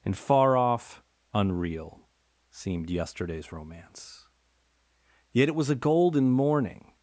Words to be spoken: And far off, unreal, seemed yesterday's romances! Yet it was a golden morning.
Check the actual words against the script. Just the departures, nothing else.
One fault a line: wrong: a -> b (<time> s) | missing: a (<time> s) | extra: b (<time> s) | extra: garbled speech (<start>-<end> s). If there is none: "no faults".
wrong: romances -> romance (3.5 s)